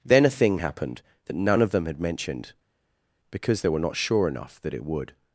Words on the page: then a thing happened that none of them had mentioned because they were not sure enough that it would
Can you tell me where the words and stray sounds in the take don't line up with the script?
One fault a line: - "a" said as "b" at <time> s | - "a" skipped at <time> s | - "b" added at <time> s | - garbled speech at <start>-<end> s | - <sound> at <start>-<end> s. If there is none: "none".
none